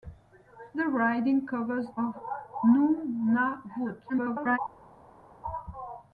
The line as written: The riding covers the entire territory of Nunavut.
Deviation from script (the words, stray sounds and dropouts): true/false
true